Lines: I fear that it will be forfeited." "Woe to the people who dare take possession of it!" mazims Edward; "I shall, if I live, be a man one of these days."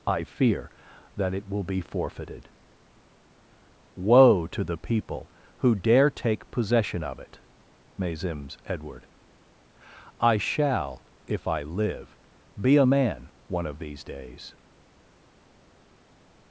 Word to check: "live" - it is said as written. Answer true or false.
true